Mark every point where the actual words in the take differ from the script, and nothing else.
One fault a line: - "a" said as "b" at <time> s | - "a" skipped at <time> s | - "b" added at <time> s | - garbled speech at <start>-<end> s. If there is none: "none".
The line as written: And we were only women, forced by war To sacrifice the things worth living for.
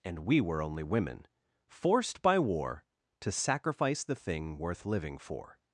- "things" said as "thing" at 4.2 s